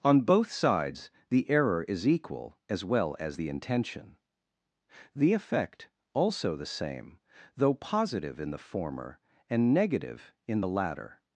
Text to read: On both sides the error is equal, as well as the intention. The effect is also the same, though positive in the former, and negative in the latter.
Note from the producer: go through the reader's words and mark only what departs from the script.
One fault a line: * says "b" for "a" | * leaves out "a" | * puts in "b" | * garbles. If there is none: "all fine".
* leaves out "is"